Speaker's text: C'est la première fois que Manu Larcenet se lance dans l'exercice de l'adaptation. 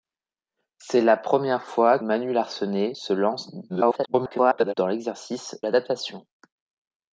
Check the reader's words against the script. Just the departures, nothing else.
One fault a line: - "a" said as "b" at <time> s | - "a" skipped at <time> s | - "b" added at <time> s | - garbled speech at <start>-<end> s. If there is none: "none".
- "que" skipped at 2.0 s
- garbled speech at 3.7-4.7 s
- "de" skipped at 5.6 s